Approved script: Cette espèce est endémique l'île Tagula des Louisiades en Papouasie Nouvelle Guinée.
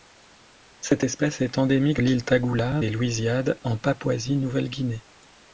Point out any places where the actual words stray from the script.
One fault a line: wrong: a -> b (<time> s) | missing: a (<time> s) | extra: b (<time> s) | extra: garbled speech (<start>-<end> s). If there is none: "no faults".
no faults